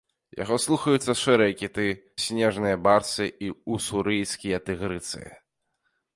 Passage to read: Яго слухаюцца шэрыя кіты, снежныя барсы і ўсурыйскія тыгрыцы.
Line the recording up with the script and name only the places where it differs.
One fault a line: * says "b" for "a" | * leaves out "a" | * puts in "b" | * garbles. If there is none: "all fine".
all fine